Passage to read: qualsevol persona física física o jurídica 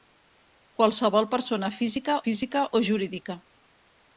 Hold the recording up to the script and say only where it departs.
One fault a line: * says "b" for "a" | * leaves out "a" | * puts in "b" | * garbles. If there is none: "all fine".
all fine